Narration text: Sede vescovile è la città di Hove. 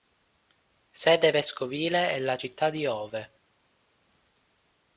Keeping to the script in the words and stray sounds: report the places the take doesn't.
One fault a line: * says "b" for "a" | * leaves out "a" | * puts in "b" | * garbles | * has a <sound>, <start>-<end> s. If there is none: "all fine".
all fine